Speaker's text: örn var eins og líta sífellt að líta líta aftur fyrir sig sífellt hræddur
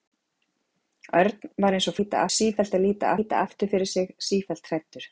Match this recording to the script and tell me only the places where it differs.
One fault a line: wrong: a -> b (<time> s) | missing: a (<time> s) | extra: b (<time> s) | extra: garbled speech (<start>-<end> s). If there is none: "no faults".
no faults